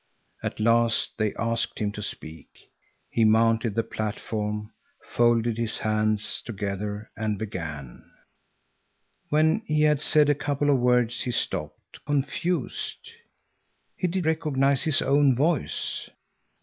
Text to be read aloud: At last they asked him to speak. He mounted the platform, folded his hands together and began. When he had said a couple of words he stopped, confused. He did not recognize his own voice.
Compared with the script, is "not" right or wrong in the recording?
wrong